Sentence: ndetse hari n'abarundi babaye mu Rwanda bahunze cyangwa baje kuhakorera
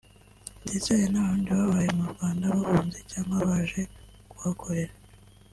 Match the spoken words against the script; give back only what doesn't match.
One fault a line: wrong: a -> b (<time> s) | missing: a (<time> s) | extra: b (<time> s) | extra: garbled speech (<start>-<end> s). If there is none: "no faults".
no faults